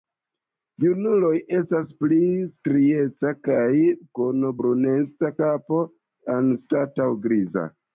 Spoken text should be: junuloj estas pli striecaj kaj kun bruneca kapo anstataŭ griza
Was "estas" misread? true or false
false